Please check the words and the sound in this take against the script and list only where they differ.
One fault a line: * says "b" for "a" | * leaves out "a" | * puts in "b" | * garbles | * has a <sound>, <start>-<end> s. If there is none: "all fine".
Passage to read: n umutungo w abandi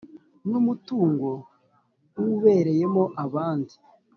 * puts in "ubereyemo"